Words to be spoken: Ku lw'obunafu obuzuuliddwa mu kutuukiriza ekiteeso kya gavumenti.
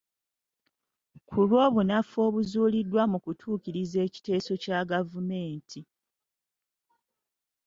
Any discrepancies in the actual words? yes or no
no